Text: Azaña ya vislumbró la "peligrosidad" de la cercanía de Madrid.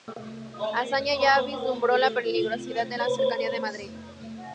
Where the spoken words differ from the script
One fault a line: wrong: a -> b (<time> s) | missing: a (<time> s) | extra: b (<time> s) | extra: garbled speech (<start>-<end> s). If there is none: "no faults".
no faults